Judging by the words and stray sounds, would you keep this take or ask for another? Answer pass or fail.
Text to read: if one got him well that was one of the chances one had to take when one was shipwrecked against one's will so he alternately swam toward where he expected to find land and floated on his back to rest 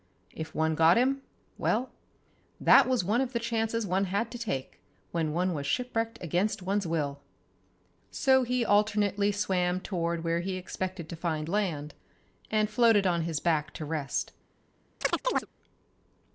fail